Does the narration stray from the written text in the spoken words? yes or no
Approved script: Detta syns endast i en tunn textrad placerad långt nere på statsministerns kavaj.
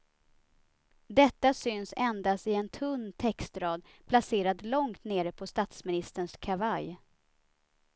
no